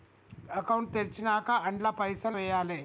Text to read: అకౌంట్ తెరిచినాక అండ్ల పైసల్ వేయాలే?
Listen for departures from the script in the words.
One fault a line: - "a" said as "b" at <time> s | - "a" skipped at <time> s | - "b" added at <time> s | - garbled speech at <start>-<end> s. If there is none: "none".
none